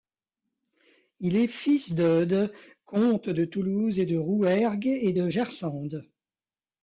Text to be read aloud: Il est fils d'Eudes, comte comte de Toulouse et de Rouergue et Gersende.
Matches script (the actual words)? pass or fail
fail